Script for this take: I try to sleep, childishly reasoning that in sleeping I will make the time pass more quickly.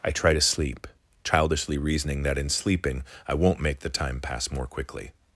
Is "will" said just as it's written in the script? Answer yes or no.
no